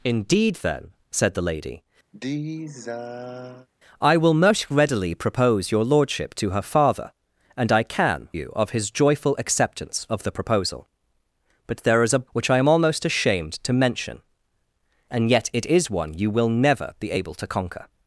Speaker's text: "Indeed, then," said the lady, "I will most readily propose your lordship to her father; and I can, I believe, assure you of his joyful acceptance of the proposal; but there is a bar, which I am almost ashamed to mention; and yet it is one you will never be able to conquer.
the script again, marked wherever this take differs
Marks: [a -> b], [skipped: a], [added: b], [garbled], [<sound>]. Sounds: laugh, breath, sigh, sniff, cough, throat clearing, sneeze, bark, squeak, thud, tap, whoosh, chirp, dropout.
"Indeed, then," said the lady, [sigh] "I will most readily propose your lordship to her father; and I can, [skipped: I believe, assure] you of his joyful acceptance of the proposal; but there is a [skipped: bar,] which I am almost ashamed to mention; and yet it is one you will never be able to conquer.